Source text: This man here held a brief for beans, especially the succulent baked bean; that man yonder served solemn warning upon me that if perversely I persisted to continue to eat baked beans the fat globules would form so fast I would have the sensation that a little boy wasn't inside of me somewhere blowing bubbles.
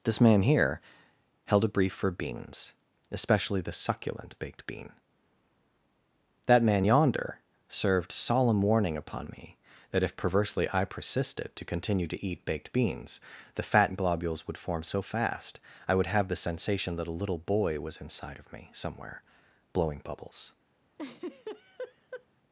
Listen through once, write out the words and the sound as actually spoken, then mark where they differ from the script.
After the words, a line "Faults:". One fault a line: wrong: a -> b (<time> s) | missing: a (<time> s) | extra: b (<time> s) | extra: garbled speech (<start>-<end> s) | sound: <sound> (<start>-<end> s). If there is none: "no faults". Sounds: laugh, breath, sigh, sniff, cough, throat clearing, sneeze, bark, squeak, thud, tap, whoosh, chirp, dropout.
This man here held a brief for beans, especially the succulent baked bean; that man yonder served solemn warning upon me that if perversely I persisted to continue to eat baked beans the fat globules would form so fast I would have the sensation that a little boy was inside of me somewhere blowing bubbles.
Faults:
wrong: wasn't -> was (17.8 s)
sound: laugh (20.9-22.3 s)